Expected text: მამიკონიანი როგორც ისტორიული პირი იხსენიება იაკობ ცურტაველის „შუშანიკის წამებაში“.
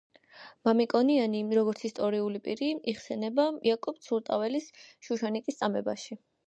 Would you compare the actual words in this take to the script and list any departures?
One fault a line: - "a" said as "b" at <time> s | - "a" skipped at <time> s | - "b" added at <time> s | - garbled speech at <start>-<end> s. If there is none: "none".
none